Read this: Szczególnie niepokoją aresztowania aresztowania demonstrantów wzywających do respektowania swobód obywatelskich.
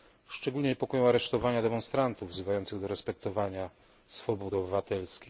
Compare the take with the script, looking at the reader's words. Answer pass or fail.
fail